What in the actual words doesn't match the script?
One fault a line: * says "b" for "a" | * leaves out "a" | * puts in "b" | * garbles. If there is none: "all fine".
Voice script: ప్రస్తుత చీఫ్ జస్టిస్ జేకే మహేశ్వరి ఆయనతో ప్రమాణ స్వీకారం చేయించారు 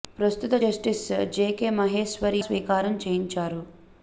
* leaves out "చీఫ్"
* leaves out "ఆయనతో ప్రమాణ"